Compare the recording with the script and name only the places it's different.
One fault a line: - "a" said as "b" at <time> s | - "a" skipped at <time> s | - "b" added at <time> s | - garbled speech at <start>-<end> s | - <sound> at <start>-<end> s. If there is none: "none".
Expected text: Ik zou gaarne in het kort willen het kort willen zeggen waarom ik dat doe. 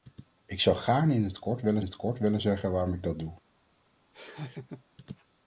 - laugh at 4.1-4.8 s